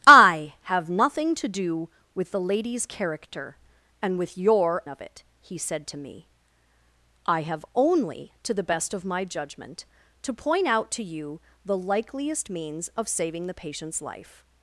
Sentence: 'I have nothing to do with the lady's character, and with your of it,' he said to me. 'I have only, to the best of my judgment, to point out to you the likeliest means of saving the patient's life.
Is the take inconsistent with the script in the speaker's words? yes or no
no